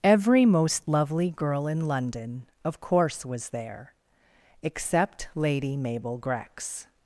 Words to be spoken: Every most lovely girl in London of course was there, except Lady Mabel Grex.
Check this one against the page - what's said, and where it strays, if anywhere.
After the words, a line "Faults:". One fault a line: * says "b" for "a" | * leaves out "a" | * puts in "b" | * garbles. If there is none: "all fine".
Every most lovely girl in London of course was there, except Lady Mabel Grex.
Faults:
all fine